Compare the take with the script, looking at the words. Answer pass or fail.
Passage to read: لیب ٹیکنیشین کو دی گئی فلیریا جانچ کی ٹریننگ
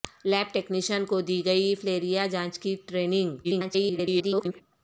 fail